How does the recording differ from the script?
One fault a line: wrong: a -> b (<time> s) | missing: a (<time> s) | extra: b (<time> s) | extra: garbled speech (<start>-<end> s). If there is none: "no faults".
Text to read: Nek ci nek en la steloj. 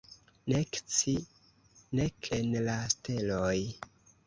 no faults